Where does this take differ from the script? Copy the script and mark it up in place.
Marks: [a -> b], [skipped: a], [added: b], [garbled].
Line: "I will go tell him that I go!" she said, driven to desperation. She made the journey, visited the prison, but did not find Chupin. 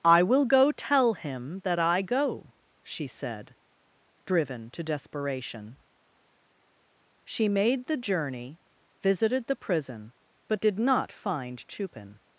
"I will go tell him that I go!" she said, driven to desperation. She made the journey, visited the prison, but did not find Chupin.